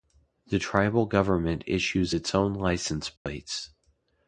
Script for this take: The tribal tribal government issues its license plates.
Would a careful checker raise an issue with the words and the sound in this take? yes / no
yes